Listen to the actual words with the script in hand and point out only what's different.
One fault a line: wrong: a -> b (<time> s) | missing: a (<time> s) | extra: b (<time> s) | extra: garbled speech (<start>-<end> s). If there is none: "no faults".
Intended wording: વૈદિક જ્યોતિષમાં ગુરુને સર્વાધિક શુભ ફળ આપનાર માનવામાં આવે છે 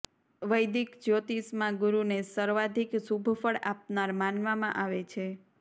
no faults